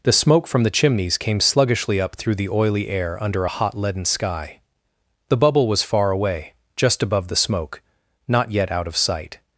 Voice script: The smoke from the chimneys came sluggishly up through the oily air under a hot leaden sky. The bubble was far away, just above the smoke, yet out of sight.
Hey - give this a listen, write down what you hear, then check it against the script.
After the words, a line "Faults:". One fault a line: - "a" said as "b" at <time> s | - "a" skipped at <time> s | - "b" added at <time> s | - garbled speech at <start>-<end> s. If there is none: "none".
The smoke from the chimneys came sluggishly up through the oily air under a hot leaden sky. The bubble was far away, just above the smoke, not yet out of sight.
Faults:
- "not" added at 8.2 s